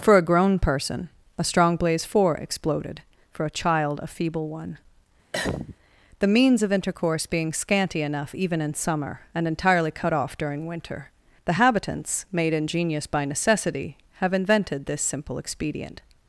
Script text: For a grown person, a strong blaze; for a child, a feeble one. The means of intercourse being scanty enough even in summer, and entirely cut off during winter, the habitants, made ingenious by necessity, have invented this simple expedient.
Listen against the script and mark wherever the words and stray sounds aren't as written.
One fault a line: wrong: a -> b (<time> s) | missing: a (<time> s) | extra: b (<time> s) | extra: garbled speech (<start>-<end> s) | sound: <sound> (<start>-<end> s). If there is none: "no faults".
extra: four exploded (2.0 s)
sound: cough (5.3-5.8 s)